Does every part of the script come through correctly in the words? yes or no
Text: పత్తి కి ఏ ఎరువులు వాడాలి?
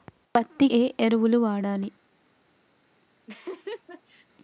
no